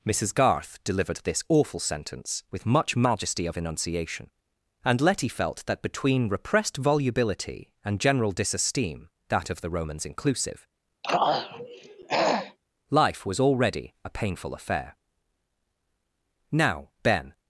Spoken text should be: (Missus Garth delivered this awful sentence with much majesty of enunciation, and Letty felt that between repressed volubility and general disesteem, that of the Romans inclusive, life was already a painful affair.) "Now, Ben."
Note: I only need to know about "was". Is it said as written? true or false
true